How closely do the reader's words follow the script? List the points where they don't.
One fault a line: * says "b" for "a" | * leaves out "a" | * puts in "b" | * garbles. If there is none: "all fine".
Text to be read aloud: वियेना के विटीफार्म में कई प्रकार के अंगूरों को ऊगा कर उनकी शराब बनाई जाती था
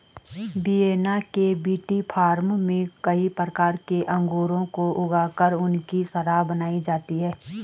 * says "है" for "था"